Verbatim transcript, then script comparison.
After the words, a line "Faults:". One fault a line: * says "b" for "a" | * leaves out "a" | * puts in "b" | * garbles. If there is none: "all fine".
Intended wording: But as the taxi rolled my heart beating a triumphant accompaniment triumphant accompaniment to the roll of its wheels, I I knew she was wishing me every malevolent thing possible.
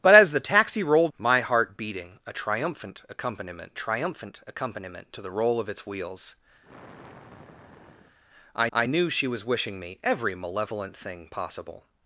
But as the taxi rolled my heart beating a triumphant accompaniment triumphant accompaniment to the roll of its wheels, I I knew she was wishing me every malevolent thing possible.
Faults:
all fine